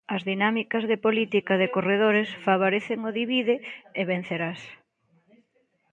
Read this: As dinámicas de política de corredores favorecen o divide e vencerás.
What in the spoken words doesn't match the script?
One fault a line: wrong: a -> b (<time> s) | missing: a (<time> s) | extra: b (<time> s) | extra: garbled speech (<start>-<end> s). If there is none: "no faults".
no faults